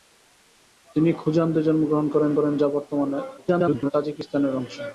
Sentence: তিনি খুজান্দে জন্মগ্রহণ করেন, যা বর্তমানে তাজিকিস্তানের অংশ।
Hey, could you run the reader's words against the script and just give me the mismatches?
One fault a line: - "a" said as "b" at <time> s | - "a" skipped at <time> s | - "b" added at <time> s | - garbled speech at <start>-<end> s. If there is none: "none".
- "করেন" added at 2.4 s
- garbled speech at 3.4-3.9 s